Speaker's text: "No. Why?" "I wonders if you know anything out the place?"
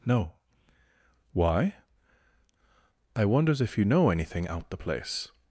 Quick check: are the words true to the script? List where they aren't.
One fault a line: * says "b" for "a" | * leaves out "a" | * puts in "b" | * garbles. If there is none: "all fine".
all fine